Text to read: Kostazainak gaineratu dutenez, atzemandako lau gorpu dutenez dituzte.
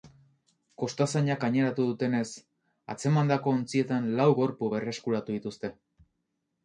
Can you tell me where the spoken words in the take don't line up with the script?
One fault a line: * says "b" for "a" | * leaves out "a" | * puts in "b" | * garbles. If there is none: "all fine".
* puts in "ontzietan"
* says "berreskuratu" for "dutenez"